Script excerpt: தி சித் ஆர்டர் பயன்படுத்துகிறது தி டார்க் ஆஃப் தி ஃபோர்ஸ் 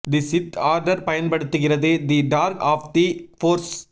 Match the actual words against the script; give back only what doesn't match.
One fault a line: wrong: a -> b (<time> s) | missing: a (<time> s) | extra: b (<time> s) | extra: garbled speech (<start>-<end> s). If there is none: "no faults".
no faults